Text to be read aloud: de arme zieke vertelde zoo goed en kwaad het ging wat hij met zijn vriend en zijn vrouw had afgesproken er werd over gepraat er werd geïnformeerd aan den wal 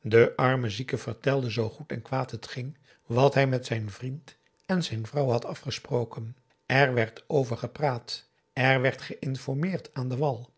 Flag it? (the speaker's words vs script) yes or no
no